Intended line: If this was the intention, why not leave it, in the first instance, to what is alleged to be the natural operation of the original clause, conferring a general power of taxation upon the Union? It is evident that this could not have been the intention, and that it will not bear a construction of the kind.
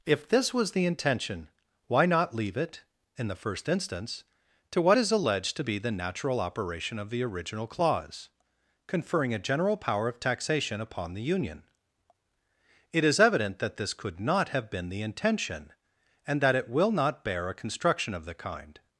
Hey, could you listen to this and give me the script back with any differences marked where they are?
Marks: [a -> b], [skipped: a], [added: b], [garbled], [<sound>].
If this was the intention, why not leave it, in the first instance, to what is alleged to be the natural operation of the original clause, conferring a general power of taxation upon the Union? It is evident that this could not have been the intention, and that it will not bear a construction of the kind.